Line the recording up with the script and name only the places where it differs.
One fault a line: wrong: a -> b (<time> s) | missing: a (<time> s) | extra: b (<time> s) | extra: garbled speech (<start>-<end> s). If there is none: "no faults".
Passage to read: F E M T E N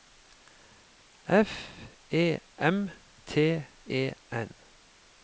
no faults